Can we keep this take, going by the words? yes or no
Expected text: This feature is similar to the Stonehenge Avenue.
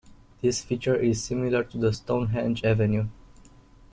yes